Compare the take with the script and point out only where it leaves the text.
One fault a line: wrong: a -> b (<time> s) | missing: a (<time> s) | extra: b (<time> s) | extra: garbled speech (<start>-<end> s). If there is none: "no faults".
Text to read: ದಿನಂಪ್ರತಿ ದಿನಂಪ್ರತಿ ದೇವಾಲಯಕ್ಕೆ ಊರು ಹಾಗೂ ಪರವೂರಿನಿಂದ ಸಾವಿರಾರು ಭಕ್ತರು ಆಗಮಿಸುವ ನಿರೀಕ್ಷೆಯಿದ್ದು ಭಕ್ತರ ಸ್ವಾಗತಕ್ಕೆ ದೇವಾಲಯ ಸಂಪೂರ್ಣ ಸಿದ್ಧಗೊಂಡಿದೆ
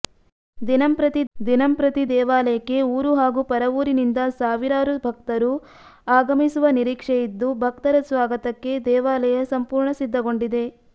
no faults